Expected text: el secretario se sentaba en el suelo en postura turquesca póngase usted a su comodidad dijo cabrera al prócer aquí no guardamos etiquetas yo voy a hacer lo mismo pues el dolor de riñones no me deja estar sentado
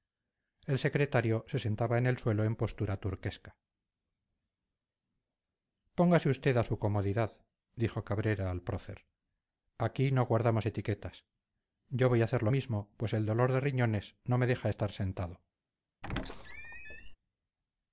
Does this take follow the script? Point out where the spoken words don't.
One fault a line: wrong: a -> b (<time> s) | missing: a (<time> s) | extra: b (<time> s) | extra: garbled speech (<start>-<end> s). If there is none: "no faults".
no faults